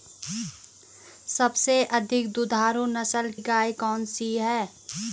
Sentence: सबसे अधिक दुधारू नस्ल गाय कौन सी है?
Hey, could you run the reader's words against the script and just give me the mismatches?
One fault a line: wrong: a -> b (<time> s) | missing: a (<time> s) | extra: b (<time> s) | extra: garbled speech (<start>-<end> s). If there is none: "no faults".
no faults